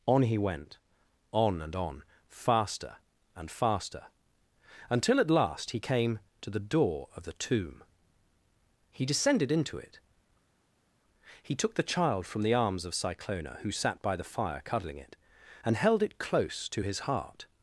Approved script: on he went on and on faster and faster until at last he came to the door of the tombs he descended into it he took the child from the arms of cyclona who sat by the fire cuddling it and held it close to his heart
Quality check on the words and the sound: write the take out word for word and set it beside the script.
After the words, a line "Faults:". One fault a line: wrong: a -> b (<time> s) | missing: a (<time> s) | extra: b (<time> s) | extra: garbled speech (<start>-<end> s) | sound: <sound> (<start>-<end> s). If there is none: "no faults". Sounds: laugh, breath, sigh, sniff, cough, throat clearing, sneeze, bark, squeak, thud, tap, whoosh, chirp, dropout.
on he went on and on faster and faster until at last he came to the door of the tomb he descended into it he took the child from the arms of cyclona who sat by the fire cuddling it and held it close to his heart
Faults:
wrong: tombs -> tomb (7.3 s)